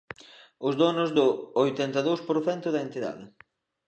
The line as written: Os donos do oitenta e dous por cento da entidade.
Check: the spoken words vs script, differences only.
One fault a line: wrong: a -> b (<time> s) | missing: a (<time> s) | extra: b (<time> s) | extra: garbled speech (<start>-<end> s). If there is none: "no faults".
no faults